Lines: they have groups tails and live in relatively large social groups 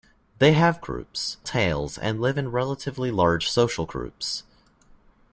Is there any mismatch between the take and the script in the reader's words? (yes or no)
no